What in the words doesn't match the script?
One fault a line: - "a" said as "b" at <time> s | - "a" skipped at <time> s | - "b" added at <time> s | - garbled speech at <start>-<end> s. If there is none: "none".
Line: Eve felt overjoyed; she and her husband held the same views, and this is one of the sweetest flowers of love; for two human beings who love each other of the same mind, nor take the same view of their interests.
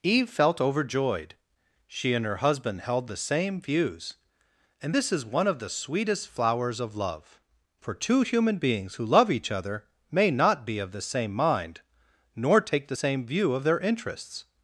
- "may not be" added at 10.1 s